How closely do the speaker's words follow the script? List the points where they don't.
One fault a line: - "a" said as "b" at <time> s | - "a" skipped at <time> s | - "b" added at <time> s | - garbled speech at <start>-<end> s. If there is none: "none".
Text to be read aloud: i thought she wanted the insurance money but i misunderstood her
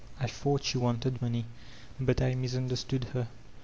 - "the insurance" skipped at 1.2 s